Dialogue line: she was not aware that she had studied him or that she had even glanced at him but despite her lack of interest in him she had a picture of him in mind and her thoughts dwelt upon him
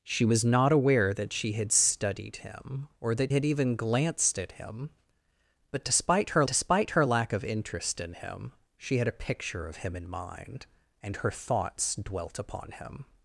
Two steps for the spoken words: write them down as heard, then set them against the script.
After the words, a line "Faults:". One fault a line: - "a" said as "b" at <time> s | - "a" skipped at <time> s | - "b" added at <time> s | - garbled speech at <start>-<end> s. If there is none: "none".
she was not aware that she had studied him or that had even glanced at him but despite her despite her lack of interest in him she had a picture of him in mind and her thoughts dwelt upon him
Faults:
- "she" skipped at 3.3 s
- "despite her" added at 6.5 s